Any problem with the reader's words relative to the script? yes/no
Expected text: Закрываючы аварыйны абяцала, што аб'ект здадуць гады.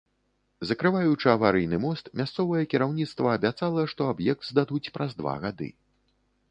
yes